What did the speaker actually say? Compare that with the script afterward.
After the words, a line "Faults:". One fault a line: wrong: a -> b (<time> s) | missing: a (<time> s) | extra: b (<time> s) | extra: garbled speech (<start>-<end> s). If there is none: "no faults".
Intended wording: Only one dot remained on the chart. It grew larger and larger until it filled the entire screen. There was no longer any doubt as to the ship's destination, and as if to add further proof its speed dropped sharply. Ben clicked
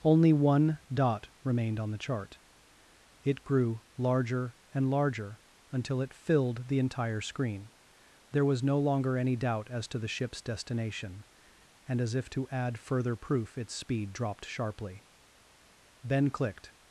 Only one dot remained on the chart. It grew larger and larger until it filled the entire screen. There was no longer any doubt as to the ship's destination, and as if to add further proof its speed dropped sharply. Ben clicked
Faults:
no faults